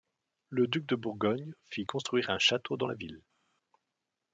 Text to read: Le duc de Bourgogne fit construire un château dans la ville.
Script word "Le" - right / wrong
right